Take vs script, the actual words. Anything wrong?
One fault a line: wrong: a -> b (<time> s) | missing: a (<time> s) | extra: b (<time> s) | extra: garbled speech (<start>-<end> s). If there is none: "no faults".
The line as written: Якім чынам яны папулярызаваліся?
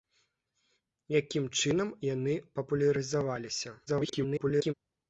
extra: garbled speech (3.9-4.7 s)